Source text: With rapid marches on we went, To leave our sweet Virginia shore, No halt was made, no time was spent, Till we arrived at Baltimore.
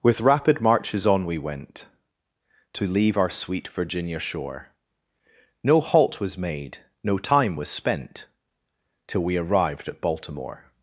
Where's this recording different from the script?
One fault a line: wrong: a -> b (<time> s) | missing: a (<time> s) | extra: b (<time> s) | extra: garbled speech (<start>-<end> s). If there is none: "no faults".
no faults